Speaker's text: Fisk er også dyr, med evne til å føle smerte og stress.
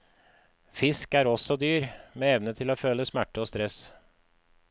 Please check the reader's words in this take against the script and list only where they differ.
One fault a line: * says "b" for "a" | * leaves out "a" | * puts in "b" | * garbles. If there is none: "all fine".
all fine